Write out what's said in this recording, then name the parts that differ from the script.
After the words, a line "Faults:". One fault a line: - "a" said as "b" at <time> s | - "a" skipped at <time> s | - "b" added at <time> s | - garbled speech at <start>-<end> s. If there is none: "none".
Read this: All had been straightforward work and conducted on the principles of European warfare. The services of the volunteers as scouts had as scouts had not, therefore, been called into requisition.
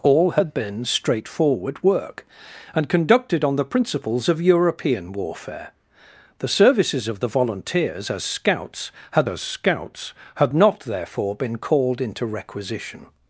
All had been straightforward work and conducted on the principles of European warfare. The services of the volunteers as scouts had as scouts had not, therefore, been called into requisition.
Faults:
none